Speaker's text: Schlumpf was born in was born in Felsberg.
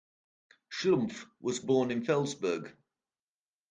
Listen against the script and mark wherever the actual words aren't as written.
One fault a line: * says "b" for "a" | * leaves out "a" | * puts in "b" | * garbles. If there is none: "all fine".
* leaves out "was born in"